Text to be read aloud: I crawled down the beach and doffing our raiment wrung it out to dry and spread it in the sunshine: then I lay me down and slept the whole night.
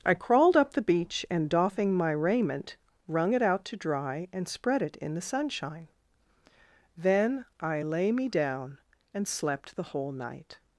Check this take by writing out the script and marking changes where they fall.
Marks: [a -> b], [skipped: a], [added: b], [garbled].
I crawled [down -> up] the beach and doffing [our -> my] raiment wrung it out to dry and spread it in the sunshine: then I lay me down and slept the whole night.